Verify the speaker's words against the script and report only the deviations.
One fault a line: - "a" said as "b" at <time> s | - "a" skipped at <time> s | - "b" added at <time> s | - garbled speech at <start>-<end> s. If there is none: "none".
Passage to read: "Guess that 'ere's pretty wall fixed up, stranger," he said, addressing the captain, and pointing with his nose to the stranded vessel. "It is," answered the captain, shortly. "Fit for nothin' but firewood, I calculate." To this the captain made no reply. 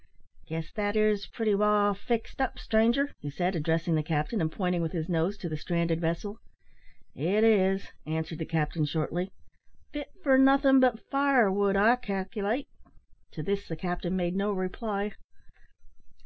none